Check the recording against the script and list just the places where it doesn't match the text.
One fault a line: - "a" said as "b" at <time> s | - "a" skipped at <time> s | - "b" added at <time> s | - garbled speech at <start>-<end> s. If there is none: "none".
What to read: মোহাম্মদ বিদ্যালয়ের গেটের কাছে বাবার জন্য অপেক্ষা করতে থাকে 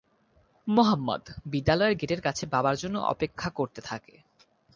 none